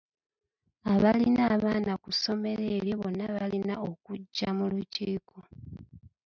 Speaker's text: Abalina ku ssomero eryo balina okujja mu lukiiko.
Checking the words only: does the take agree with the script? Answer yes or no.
no